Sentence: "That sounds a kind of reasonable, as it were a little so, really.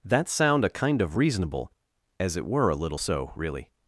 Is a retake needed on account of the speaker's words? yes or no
yes